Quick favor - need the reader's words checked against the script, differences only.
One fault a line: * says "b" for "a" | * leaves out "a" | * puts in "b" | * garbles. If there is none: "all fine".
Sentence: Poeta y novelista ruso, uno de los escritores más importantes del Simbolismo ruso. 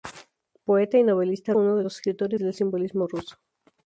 * leaves out "ruso"
* leaves out "más importantes"